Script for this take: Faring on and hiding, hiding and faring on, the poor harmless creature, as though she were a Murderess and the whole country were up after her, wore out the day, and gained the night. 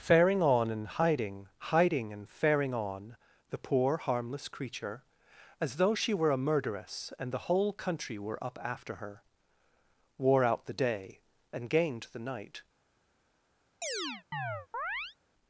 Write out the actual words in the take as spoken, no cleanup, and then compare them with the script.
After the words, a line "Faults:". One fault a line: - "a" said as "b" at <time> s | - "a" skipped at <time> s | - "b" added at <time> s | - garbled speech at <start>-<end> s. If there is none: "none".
Faring on and hiding, hiding and faring on, the poor harmless creature, as though she were a Murderess and the whole country were up after her, wore out the day, and gained the night.
Faults:
none